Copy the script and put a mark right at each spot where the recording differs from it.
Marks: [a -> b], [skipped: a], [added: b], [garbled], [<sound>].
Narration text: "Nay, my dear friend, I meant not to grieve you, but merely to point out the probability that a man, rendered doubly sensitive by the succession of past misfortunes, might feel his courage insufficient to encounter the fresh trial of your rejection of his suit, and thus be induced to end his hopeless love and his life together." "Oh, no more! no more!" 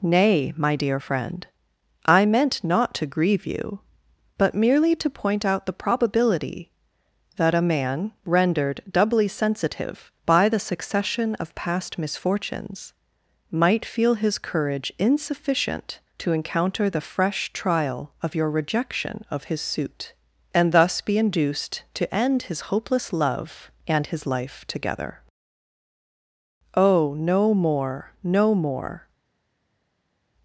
"Nay, my dear friend, I meant not to grieve you, but merely to point out the probability that a man, rendered doubly sensitive by the succession of past misfortunes, might feel his courage insufficient to encounter the fresh trial of your rejection of his suit, and thus be induced to end his hopeless love and his life together." "Oh, no more! no more!"